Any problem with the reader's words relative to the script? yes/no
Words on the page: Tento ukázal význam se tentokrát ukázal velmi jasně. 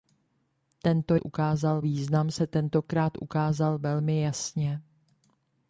no